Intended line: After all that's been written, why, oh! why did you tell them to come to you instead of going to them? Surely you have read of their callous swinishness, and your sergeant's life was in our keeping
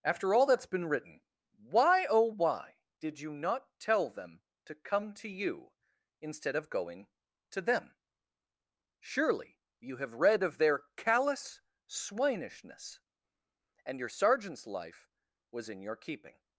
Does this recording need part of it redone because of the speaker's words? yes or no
yes